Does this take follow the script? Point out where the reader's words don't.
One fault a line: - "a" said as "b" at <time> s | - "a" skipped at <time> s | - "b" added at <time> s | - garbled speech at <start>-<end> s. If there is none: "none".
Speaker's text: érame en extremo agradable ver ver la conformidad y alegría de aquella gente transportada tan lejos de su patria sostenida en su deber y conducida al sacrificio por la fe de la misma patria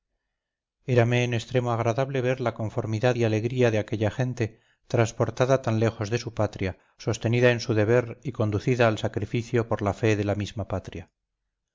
- "ver" skipped at 2.4 s